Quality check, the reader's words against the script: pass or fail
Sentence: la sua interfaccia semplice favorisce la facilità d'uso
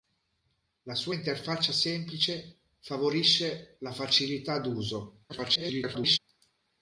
fail